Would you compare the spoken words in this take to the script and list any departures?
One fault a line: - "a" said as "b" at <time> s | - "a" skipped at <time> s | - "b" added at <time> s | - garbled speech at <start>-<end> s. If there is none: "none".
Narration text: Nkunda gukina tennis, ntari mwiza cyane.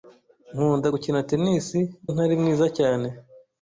none